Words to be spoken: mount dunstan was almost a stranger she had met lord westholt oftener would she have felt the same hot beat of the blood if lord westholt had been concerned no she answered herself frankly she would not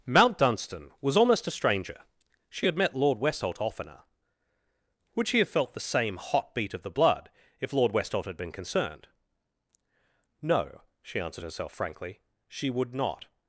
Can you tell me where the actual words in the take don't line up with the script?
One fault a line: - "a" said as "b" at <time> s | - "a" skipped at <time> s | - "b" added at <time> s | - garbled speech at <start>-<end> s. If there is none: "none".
none